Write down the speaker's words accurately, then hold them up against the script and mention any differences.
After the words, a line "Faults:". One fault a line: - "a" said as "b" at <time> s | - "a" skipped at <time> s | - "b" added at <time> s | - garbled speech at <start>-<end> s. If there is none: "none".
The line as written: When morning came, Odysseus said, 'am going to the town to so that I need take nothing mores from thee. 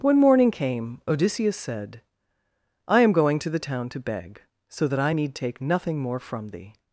When morning came, Odysseus said, 'I am going to the town to beg, so that I need take nothing more from thee.
Faults:
- "I" added at 2.9 s
- "beg" added at 4.0 s
- "mores" said as "more" at 6.0 s